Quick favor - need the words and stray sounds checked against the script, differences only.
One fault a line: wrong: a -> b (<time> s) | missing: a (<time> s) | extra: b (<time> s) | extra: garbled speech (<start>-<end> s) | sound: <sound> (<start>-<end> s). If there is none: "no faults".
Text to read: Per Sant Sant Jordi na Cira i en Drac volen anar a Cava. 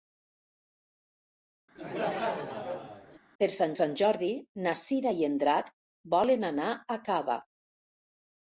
sound: laugh (1.8-3.2 s)